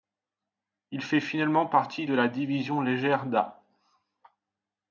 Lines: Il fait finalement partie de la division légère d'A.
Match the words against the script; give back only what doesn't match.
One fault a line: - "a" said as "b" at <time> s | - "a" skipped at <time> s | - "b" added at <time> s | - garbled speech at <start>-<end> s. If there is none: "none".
none